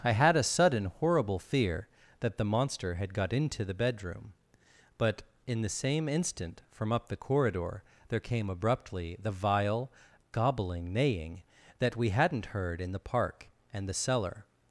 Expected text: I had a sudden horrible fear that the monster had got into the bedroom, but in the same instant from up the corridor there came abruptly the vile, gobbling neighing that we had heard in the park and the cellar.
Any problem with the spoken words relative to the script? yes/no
yes